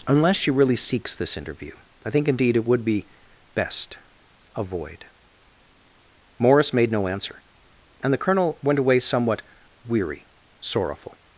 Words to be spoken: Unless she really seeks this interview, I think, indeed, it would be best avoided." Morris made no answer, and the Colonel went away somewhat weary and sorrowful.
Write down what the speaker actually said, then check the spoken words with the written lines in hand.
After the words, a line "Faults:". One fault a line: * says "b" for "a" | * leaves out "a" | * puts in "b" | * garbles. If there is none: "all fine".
Unless she really seeks this interview, I think, indeed, it would be best avoid." Morris made no answer, and the Colonel went away somewhat weary sorrowful.
Faults:
* says "avoid" for "avoided"
* leaves out "and"